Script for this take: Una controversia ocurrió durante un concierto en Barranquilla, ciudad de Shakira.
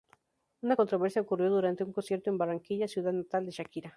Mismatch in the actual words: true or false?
true